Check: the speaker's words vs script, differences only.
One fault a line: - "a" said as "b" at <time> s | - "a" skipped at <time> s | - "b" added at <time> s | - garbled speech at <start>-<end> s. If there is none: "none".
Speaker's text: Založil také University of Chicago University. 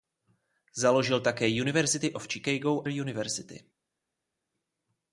none